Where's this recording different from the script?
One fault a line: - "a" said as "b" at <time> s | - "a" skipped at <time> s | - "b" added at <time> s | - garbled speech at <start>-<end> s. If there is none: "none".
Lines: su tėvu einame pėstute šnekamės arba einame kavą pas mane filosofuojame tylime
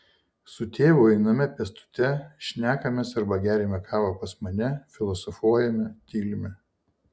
- "einame" said as "geriame" at 3.5 s